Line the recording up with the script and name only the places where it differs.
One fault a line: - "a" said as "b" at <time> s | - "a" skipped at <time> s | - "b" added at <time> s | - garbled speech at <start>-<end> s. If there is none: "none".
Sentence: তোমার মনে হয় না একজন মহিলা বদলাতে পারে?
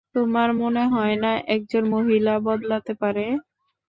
none